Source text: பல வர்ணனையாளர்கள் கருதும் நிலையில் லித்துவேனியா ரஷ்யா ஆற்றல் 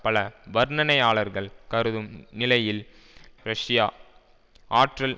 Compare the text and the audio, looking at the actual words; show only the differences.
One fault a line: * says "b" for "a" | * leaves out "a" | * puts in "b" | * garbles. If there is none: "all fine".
* leaves out "லித்துவேனியா"